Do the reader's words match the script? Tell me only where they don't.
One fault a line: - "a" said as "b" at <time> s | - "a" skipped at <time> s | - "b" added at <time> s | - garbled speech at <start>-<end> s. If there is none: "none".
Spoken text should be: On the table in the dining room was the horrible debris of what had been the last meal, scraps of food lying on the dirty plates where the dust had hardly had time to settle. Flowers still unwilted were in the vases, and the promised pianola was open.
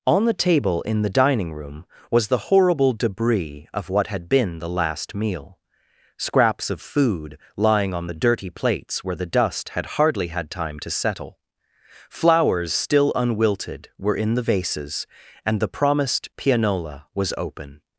none